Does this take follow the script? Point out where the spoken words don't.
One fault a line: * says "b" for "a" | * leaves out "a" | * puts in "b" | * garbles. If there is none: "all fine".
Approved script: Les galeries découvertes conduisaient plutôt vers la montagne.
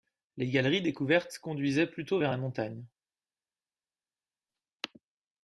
all fine